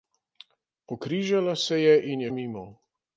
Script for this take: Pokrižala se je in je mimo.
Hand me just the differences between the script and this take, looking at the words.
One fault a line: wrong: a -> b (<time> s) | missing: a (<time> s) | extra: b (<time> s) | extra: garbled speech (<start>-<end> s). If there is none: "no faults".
no faults